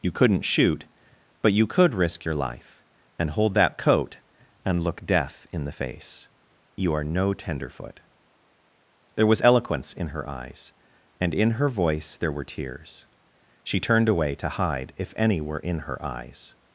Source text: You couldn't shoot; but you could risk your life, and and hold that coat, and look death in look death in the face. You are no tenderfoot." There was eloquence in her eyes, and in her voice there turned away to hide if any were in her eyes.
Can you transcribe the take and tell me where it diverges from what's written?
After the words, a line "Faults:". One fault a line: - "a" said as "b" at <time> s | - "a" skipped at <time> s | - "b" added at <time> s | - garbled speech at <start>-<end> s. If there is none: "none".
You couldn't shoot; but you could risk your life, and hold that coat, and look death in the face. You are no tenderfoot." There was eloquence in her eyes, and in her voice there were tears. She turned away to hide if any were in her eyes.
Faults:
- "and" skipped at 3.3 s
- "look death in" skipped at 5.7 s
- "were tears She" added at 12.3 s